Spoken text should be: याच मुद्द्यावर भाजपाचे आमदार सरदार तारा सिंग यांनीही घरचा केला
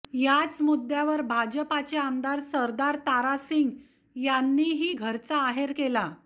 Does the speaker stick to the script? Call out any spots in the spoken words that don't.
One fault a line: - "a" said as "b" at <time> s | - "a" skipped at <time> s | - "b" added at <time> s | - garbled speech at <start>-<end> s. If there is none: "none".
- "आहेर" added at 5.4 s